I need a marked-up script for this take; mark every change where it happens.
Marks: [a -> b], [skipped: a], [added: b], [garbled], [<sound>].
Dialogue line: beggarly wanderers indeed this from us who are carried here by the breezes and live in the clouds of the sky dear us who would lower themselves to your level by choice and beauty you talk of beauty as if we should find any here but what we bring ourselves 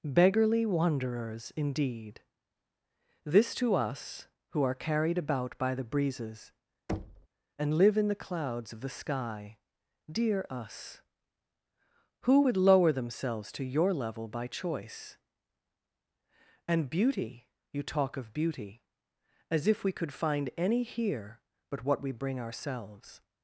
beggarly wanderers indeed this [from -> to] us who are carried [here -> about] by the breezes [thud] and live in the clouds of the sky dear us who would lower themselves to your level by choice and beauty you talk of beauty as if we [should -> could] find any here but what we bring ourselves